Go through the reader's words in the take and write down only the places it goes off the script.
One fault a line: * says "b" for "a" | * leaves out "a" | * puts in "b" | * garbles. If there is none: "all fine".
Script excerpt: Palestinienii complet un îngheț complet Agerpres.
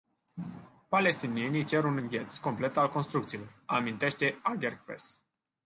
* says "cer" for "complet"
* puts in "al construcțiilor amintește"